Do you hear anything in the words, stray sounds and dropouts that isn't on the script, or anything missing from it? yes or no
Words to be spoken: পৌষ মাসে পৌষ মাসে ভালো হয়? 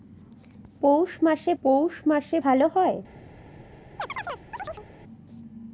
yes